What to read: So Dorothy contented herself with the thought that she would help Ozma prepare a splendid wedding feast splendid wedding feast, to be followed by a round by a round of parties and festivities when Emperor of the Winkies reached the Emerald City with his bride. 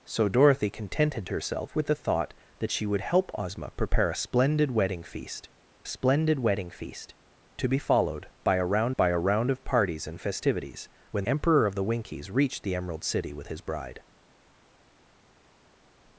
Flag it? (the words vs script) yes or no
no